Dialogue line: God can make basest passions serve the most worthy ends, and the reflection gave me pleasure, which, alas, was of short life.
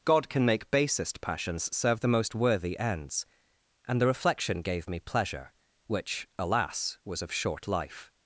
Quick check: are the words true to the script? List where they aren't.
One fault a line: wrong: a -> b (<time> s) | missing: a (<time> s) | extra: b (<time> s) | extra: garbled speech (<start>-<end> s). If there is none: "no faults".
no faults